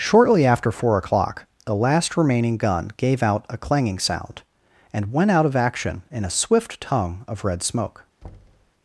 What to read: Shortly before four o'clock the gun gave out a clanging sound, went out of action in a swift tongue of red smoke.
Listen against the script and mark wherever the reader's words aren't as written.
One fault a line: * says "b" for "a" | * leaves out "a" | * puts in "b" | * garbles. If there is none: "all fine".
* says "after" for "before"
* puts in "last remaining"
* puts in "and"